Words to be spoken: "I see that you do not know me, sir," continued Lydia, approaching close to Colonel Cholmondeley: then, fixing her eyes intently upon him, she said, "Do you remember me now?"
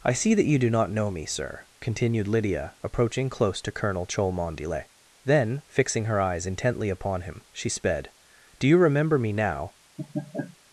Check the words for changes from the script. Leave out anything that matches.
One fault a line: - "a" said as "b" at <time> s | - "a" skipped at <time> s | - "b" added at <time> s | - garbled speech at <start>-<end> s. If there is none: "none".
- "said" said as "sped" at 7.7 s